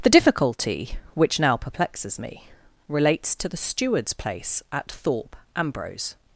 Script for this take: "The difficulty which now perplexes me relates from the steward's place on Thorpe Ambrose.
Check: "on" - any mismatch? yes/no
yes